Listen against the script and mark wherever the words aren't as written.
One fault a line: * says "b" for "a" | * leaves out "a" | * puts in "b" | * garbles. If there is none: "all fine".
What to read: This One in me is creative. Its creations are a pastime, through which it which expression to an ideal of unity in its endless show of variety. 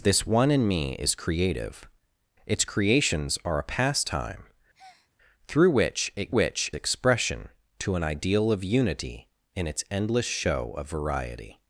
all fine